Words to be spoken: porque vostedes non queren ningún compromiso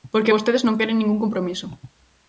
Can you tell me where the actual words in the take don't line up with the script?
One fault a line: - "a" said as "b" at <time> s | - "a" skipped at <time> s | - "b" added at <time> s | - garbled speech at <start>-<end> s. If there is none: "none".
none